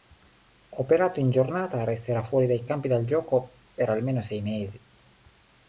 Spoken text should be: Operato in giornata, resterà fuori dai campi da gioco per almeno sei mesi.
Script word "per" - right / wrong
right